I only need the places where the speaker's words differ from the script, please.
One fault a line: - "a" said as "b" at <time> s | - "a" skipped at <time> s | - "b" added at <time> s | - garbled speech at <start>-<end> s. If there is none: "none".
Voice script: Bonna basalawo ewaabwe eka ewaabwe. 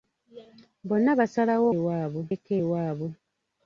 none